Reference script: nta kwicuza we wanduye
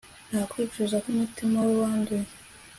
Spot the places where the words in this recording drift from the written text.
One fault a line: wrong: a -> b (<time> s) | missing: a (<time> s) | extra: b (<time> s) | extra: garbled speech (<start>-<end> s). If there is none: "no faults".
extra: kumutima (1.0 s)